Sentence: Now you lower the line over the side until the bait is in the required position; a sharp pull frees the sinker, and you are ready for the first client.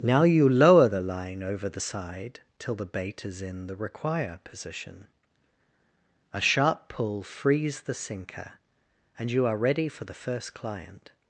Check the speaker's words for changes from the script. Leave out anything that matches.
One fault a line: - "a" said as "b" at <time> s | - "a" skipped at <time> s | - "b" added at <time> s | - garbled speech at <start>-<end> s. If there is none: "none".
- "until" said as "till" at 2.6 s
- "required" said as "require" at 3.7 s